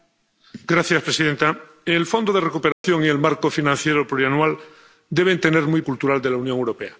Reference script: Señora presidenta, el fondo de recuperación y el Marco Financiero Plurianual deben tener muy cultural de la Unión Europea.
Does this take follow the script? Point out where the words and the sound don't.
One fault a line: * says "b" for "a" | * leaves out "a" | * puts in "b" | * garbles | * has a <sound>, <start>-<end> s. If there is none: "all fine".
* has a dropout, 2.7-2.8 s